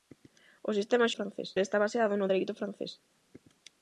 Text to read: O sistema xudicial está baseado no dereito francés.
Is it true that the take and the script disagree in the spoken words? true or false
true